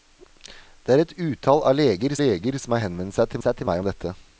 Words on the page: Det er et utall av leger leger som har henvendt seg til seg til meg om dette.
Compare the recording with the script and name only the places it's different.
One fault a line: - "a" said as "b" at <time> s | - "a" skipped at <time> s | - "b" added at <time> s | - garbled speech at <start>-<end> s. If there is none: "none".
none